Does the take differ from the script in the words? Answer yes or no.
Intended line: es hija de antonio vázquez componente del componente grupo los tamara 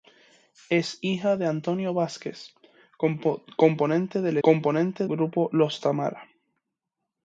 no